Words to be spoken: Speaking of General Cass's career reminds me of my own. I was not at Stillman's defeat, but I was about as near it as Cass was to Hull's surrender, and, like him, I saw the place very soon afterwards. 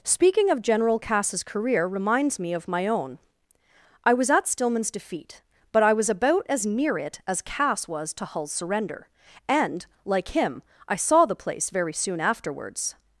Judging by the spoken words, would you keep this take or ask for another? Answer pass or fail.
fail